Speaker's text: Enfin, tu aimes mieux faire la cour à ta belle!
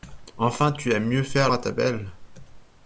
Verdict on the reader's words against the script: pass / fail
fail